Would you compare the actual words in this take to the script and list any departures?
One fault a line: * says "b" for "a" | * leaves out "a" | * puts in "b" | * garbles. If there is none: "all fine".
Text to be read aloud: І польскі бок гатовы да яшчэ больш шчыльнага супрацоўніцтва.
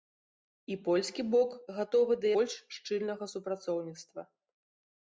* leaves out "яшчэ"